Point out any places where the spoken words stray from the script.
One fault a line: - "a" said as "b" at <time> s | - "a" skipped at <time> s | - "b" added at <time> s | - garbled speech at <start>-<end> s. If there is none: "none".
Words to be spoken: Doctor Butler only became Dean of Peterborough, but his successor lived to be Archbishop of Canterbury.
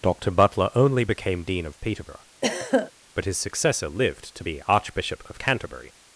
none